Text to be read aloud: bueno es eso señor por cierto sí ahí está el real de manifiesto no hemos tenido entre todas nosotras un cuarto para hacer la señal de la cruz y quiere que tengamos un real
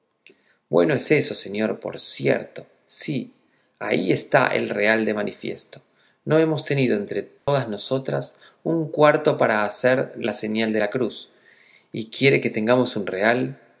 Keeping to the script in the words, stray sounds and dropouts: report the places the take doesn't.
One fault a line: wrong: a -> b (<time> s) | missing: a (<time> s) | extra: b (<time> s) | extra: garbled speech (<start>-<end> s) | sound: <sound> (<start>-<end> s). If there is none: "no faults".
sound: dropout (7.4-7.5 s)